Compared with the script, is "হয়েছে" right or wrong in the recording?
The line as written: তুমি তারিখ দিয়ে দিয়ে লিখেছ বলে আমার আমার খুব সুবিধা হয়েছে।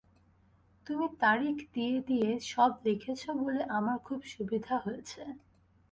right